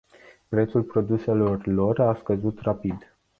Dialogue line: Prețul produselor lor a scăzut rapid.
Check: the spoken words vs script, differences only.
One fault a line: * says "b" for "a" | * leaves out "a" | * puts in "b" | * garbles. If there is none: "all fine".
all fine